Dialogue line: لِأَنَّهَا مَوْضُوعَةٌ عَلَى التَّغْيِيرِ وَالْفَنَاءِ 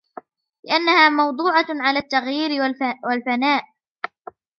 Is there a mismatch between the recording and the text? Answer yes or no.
no